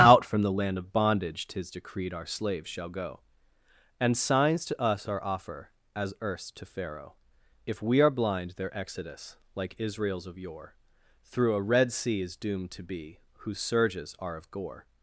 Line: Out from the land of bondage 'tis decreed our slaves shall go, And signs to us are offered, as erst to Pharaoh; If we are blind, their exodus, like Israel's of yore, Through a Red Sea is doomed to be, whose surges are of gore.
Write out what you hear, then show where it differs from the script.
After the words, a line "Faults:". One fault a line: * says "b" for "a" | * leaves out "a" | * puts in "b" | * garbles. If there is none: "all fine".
Out from the land of bondage 'tis decreed our slaves shall go, And signs to us are offer, as erst to Pharaoh; If we are blind, their exodus, like Israel's of yore, Through a Red Sea is doomed to be, whose surges are of gore.
Faults:
* says "offer" for "offered"